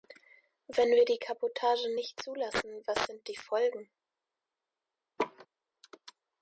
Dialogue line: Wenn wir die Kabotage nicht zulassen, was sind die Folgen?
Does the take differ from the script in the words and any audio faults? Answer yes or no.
yes